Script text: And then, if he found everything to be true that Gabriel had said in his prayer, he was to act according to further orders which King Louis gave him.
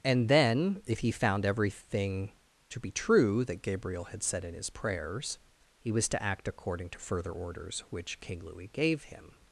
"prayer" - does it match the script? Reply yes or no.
no